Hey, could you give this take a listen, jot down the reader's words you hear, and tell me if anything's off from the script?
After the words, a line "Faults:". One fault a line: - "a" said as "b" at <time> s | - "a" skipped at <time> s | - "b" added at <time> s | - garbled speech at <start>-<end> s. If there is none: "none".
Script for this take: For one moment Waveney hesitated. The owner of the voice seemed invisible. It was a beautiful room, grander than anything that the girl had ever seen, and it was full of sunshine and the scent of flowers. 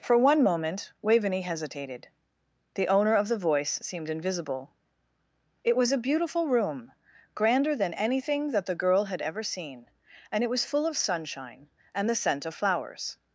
For one moment Waveney hesitated. The owner of the voice seemed invisible. It was a beautiful room, grander than anything that the girl had ever seen, and it was full of sunshine and the scent of flowers.
Faults:
none